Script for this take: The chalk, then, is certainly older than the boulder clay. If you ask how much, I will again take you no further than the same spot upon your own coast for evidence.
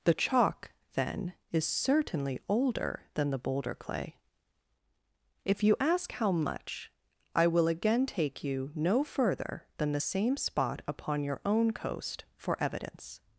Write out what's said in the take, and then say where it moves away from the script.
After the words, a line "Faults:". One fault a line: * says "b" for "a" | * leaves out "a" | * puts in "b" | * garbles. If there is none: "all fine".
The chalk, then, is certainly older than the boulder clay. If you ask how much, I will again take you no further than the same spot upon your own coast for evidence.
Faults:
all fine